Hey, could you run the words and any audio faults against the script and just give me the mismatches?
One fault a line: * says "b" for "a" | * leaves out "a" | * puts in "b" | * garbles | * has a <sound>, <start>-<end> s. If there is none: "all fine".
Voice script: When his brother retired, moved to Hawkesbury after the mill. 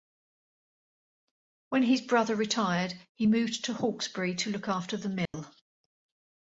* puts in "he"
* puts in "to look"
* has a dropout, 5.3-5.3 s